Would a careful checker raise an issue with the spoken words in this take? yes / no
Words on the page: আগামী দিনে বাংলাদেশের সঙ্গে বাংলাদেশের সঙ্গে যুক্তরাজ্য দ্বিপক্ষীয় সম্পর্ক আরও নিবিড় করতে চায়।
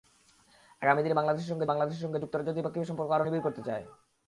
no